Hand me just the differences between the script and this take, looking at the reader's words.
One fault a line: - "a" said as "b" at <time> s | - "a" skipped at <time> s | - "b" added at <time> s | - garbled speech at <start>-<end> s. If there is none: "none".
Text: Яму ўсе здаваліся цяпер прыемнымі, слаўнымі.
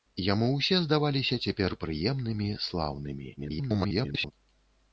- garbled speech at 3.4-4.3 s